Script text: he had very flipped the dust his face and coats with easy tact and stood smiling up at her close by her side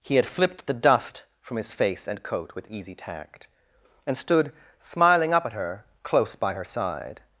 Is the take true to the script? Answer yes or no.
no